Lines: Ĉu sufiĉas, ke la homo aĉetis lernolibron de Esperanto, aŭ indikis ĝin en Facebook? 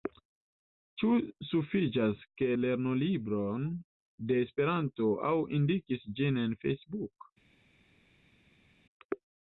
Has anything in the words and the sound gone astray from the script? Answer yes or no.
yes